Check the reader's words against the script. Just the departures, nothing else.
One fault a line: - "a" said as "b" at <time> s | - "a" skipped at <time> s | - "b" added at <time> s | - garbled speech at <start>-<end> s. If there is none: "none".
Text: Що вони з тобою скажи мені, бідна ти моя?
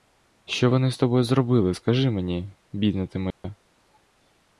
- "зробили" added at 1.2 s